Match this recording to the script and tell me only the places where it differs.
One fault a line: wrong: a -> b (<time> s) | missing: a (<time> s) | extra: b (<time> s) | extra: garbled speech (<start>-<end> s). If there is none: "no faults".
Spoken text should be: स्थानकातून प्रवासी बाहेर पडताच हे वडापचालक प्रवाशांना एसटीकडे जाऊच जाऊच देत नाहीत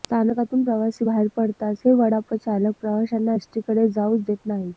missing: जाऊच (4.2 s)